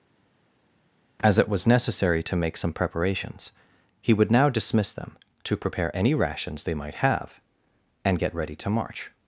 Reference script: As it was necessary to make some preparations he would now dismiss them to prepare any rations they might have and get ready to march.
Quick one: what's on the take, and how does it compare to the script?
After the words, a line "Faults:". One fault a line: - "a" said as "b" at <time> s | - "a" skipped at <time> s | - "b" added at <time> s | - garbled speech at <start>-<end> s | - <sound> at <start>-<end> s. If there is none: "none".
As it was necessary to make some preparations he would now dismiss them to prepare any rations they might have and get ready to march.
Faults:
none